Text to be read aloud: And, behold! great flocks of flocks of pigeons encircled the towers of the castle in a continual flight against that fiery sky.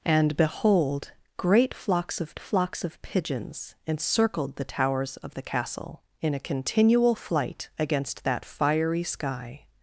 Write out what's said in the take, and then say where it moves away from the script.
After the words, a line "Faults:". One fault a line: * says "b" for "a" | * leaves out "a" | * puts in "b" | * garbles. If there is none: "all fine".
And, behold! great flocks of flocks of pigeons encircled the towers of the castle in a continual flight against that fiery sky.
Faults:
all fine